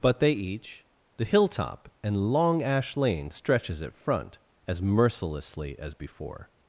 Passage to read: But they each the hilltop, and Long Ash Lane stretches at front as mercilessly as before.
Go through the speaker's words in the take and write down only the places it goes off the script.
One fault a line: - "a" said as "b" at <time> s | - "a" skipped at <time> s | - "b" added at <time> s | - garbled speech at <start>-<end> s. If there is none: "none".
none